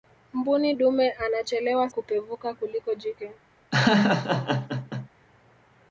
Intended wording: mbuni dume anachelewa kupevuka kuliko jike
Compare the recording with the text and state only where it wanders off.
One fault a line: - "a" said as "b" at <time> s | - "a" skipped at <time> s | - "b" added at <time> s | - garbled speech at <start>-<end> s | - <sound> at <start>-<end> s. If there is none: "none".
- laugh at 3.7-5.1 s